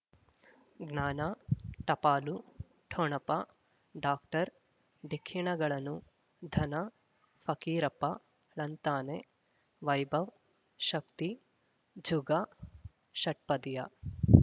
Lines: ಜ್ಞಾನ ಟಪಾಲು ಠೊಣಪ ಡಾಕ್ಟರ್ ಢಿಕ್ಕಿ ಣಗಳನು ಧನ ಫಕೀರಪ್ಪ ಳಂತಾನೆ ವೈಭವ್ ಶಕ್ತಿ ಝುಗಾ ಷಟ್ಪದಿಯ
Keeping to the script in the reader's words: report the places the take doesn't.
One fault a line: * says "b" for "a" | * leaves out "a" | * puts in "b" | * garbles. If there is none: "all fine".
all fine